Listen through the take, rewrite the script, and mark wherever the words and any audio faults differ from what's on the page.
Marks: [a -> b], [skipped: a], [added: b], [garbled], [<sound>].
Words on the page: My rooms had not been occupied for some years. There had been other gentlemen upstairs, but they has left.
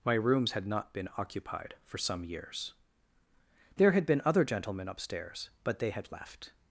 My rooms had not been occupied for some years. There had been other gentlemen upstairs, but they [has -> had] left.